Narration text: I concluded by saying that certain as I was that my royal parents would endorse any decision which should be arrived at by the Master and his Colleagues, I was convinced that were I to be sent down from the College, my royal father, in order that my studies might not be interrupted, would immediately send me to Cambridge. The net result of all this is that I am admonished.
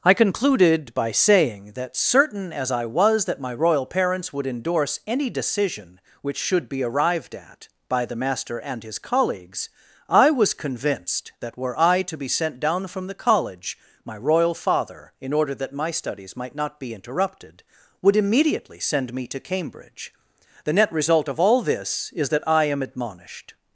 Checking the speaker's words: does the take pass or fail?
pass